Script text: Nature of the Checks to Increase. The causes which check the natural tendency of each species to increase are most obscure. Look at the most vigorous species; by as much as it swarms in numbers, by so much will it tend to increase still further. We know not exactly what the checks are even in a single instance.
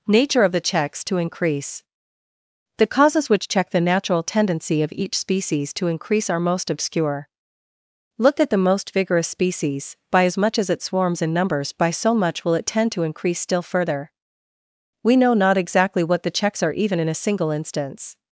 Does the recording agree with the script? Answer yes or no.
yes